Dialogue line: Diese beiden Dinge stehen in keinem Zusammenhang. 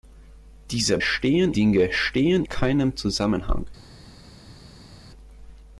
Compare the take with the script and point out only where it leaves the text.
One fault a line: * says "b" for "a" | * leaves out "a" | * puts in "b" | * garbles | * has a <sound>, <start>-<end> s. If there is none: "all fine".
* says "stehen" for "beiden"
* leaves out "in"